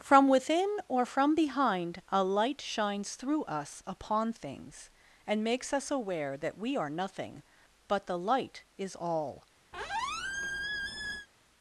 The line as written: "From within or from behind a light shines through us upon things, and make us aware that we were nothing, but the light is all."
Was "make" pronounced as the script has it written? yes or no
no